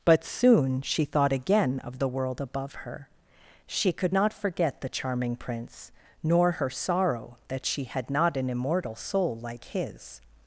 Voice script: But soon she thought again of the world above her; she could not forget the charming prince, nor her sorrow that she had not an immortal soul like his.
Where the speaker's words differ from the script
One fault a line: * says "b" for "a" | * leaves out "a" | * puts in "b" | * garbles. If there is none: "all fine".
all fine